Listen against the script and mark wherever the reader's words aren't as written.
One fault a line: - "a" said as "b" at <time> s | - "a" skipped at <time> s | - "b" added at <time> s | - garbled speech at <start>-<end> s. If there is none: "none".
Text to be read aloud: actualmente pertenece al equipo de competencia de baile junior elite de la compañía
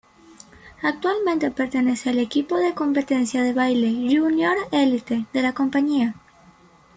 none